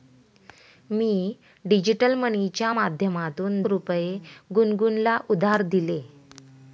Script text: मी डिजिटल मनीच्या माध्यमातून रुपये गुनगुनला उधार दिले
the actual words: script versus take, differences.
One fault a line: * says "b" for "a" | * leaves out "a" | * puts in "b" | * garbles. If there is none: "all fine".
all fine